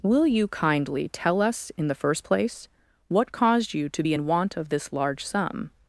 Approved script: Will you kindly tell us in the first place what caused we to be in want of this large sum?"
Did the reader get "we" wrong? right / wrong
wrong